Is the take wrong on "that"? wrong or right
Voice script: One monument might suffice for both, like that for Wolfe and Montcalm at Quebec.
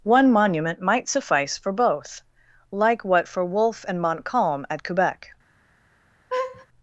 wrong